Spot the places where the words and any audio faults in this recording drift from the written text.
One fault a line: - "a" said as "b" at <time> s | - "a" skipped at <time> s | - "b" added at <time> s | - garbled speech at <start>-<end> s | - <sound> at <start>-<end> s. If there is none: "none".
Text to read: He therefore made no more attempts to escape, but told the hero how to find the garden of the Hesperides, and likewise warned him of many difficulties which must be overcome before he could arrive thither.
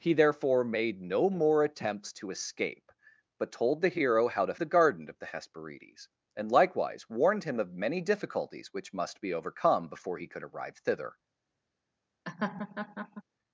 - "find" skipped at 4.5 s
- laugh at 12.3-13.2 s